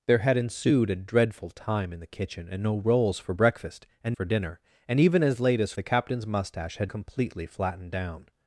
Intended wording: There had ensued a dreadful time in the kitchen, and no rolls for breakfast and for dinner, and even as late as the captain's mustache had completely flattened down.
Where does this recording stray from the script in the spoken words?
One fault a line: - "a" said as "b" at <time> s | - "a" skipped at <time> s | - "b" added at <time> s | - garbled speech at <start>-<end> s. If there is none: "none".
none